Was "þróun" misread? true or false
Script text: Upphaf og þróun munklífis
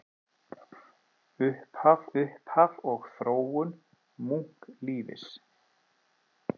false